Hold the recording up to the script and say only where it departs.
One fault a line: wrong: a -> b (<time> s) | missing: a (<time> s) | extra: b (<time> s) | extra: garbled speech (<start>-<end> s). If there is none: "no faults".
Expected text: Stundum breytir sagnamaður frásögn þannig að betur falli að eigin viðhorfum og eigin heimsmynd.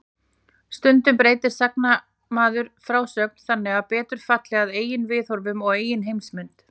no faults